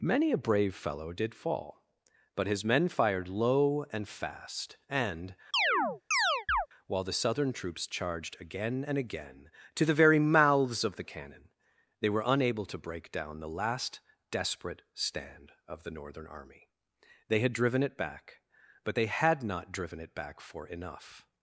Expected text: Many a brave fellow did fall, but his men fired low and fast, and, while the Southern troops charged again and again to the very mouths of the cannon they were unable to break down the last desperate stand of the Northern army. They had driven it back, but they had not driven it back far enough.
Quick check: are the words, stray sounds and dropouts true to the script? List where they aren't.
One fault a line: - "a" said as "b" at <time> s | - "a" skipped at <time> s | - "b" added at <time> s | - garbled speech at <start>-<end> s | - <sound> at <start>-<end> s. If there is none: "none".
- chirp at 5.5-6.7 s
- "far" said as "for" at 20.4 s